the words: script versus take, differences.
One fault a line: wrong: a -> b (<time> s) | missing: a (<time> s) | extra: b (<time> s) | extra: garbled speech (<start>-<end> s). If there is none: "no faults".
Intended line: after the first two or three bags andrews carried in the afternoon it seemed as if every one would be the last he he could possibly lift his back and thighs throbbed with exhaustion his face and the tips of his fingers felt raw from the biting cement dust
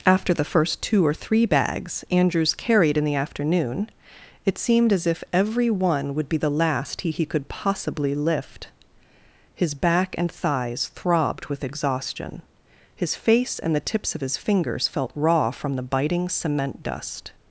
no faults